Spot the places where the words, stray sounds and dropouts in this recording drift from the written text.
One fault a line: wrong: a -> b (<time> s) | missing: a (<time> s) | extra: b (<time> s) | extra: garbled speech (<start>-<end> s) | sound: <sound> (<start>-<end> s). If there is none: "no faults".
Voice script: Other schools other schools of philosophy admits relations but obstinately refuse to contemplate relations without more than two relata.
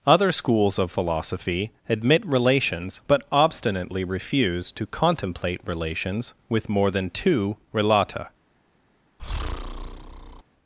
missing: other schools (0.8 s)
wrong: admits -> admit (1.9 s)
wrong: without -> with (6.5 s)
sound: breath (9.2-10.4 s)